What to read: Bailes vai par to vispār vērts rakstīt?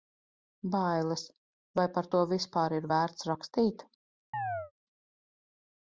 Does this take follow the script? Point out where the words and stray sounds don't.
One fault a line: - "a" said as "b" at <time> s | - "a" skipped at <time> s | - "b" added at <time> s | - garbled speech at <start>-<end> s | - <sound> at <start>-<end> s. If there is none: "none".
- "ir" added at 2.8 s
- chirp at 4.3-4.7 s